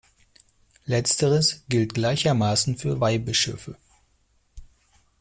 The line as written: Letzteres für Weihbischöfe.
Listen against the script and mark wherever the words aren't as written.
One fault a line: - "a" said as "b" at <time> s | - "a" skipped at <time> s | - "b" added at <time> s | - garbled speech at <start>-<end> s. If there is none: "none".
- "gilt gleichermaßen" added at 1.7 s